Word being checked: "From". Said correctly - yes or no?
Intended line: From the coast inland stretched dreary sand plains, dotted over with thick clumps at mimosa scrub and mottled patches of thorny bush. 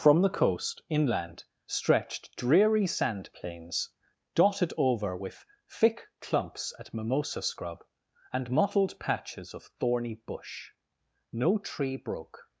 yes